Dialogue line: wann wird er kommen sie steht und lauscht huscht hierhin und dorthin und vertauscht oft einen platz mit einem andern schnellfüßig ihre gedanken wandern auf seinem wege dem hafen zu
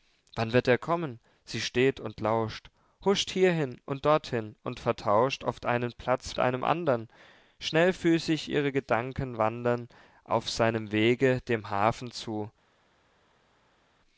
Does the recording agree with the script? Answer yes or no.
no